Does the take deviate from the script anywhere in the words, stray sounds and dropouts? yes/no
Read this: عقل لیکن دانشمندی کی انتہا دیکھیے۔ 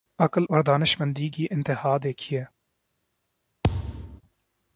yes